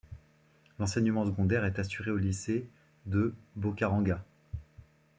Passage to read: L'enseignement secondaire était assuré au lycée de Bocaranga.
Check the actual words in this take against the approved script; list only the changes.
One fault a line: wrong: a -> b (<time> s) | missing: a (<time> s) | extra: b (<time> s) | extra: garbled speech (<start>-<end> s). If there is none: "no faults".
wrong: était -> est (1.6 s)